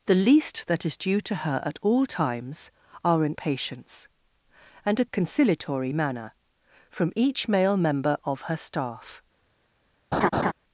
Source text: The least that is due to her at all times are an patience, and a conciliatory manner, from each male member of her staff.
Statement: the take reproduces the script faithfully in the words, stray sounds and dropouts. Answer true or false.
false